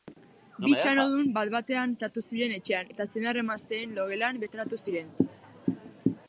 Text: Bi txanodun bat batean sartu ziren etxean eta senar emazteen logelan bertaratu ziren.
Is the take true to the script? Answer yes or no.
yes